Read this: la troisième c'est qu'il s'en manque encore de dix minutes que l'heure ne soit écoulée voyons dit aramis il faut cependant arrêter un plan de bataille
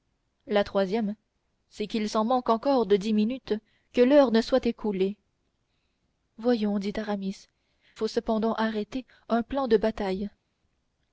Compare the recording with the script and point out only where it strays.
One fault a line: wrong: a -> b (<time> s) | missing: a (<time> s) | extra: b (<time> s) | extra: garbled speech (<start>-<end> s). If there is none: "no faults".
missing: il (7.5 s)